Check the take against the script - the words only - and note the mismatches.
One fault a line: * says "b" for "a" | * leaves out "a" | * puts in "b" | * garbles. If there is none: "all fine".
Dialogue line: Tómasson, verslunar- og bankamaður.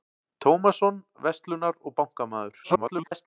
* garbles